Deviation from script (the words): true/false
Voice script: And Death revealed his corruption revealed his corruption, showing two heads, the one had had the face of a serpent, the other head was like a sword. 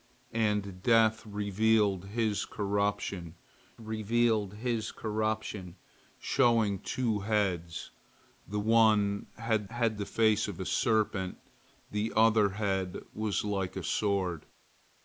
false